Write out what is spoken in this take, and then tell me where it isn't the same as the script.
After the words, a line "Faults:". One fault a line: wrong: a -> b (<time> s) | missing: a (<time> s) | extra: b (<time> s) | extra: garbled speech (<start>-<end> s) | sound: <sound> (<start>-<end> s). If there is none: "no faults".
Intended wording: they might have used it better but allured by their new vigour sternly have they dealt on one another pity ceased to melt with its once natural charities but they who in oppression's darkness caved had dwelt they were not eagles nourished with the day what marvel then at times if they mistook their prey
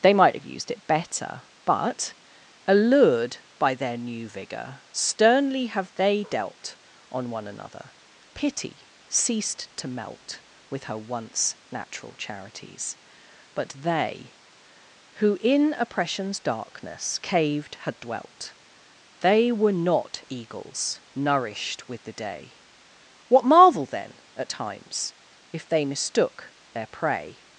they might have used it better but allured by their new vigour sternly have they dealt on one another pity ceased to melt with her once natural charities but they who in oppression's darkness caved had dwelt they were not eagles nourished with the day what marvel then at times if they mistook their prey
Faults:
wrong: its -> her (10.8 s)